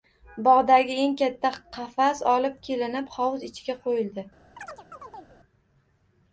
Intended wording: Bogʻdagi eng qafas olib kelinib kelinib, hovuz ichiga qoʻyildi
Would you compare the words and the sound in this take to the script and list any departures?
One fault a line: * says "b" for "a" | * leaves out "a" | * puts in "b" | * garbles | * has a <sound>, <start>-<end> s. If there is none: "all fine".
* puts in "katta"
* leaves out "kelinib"
* has a chirp, 4.6-5.4 s